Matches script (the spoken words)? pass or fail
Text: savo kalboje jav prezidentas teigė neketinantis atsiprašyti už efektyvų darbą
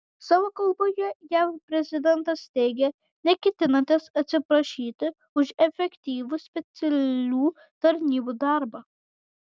fail